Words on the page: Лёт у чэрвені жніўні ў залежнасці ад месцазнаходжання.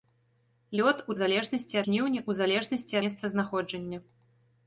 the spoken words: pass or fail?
fail